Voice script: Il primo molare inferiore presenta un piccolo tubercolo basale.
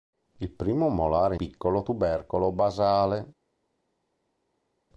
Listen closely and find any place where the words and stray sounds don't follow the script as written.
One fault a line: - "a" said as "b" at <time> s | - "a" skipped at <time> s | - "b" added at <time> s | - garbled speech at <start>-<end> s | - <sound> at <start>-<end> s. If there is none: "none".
- "inferiore presenta un" skipped at 1.4 s